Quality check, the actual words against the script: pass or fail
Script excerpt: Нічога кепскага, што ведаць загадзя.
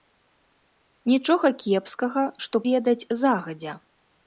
pass